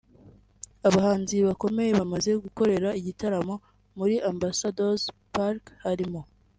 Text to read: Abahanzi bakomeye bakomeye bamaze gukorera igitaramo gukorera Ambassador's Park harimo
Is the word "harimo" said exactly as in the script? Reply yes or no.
yes